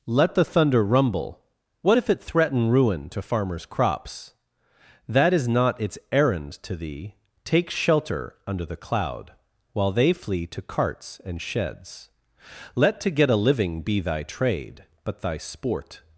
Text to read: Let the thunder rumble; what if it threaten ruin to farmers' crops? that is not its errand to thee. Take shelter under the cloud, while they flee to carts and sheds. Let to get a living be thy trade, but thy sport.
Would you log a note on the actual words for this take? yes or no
no